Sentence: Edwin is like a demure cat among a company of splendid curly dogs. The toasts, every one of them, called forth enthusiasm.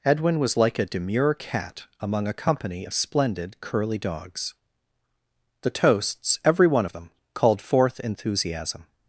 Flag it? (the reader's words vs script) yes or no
yes